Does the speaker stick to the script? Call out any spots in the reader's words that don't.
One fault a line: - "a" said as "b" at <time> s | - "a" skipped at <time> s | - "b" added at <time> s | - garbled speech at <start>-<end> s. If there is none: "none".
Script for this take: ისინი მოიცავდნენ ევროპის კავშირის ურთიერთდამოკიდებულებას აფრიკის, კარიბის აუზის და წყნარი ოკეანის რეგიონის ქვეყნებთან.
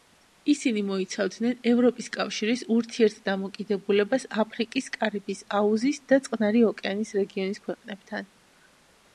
none